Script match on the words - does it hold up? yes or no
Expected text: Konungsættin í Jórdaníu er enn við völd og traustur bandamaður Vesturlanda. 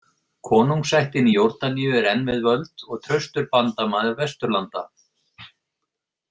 yes